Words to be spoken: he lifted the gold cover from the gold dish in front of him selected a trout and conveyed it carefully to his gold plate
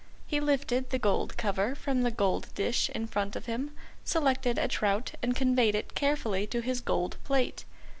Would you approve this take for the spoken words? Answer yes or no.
yes